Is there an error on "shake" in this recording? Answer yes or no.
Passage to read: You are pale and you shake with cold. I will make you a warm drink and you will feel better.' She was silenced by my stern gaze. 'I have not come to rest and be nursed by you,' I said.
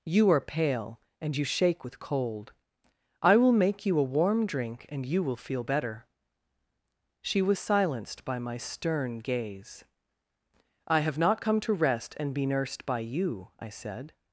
no